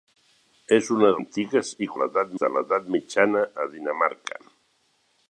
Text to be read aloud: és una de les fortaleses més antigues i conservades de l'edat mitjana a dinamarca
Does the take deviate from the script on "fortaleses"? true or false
true